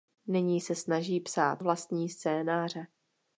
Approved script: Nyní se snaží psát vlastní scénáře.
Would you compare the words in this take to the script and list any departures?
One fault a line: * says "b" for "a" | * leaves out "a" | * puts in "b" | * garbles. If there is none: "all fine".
all fine